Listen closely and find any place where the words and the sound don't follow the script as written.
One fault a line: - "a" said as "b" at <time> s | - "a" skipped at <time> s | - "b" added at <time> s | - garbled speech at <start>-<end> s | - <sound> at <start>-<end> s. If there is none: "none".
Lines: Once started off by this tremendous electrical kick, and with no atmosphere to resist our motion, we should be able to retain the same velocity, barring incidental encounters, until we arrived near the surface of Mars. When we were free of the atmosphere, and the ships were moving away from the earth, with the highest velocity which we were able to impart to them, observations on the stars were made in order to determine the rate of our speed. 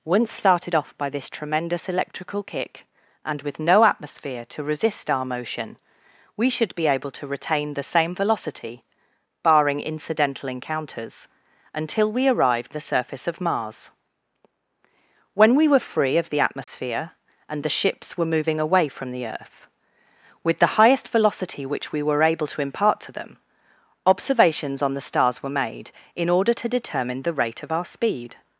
- "near" skipped at 12.7 s
- dropout at 16.6-16.7 s